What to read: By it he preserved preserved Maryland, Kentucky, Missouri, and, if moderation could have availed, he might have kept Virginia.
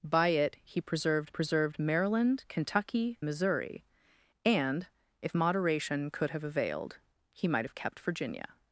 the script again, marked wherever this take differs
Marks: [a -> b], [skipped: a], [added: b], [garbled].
By it he preserved preserved Maryland, Kentucky, Missouri, and, if moderation could have availed, he might have kept Virginia.